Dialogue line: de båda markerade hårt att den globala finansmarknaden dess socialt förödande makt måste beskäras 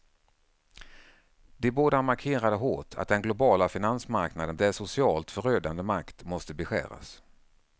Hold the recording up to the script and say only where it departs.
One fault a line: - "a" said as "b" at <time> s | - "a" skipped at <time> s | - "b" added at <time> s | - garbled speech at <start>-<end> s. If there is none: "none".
none